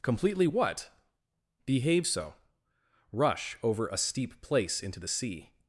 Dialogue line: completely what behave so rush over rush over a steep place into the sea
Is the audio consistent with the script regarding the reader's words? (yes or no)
no